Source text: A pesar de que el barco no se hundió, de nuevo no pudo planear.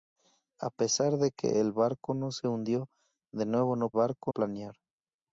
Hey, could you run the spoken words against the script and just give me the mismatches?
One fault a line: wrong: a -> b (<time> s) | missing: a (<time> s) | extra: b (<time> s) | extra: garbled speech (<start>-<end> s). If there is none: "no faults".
wrong: pudo -> barco (3.9 s)